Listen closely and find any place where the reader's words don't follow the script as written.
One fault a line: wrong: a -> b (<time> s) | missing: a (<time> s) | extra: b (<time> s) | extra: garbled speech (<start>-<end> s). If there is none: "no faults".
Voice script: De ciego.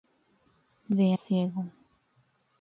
no faults